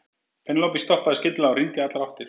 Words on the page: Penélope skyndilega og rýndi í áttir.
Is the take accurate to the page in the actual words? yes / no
no